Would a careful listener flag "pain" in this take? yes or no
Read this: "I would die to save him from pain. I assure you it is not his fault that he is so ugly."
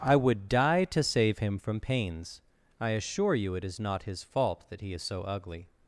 yes